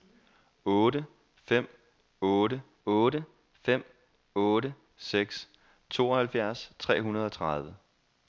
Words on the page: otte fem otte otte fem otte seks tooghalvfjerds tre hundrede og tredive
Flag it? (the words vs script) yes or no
no